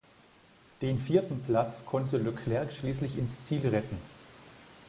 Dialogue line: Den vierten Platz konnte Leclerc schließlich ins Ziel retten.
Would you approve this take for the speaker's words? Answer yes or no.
yes